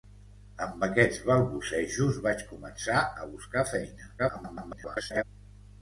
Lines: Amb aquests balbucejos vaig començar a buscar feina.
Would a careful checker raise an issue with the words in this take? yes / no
yes